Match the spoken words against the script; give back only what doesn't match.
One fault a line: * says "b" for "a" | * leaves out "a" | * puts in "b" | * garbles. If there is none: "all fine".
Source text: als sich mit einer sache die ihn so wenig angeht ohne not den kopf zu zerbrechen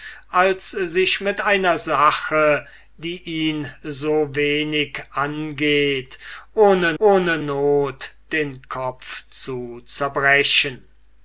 * puts in "ohne"